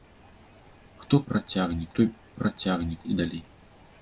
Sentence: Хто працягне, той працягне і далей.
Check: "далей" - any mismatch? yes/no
no